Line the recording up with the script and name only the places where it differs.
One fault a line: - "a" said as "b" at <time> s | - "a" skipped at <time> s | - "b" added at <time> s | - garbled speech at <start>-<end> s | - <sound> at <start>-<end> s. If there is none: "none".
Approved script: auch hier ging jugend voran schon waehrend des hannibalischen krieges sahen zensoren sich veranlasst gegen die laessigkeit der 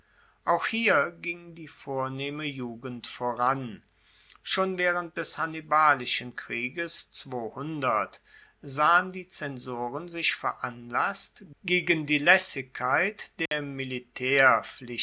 - "die vornehme" added at 1.5 s
- "die" added at 9.1 s
- dropout at 13.5-13.5 s